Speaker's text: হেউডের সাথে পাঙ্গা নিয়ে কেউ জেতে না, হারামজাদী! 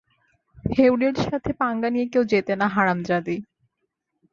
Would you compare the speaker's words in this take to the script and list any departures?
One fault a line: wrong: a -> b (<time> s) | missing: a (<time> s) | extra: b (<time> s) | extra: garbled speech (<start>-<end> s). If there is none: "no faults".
no faults